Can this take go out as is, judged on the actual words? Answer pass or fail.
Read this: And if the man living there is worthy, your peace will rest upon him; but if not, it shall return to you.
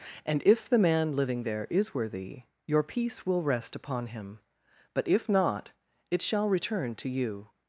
pass